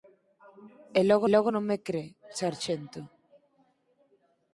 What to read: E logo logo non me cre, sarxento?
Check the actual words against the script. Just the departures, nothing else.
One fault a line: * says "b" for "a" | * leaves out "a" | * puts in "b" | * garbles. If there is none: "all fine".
all fine